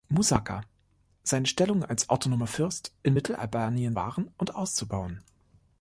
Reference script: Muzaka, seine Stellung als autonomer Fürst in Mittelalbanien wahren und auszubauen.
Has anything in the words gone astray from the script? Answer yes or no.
no